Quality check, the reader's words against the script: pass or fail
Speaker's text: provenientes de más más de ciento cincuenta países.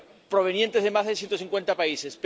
fail